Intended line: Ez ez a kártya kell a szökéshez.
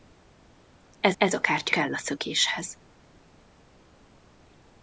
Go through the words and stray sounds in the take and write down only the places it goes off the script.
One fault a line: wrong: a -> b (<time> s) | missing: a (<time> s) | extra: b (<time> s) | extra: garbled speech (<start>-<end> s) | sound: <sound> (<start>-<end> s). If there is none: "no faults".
no faults